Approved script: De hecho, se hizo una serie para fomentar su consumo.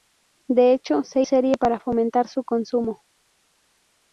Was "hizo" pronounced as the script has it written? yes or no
no